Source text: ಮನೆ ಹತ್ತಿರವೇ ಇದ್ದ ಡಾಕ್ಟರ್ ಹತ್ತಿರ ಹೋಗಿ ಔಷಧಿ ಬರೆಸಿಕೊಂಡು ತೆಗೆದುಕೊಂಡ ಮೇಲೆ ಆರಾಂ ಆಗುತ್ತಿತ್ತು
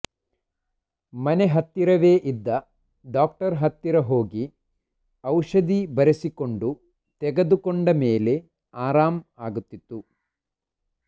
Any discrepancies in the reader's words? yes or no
no